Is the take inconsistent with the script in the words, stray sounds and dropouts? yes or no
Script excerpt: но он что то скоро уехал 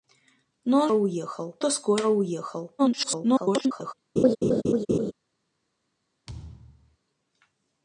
yes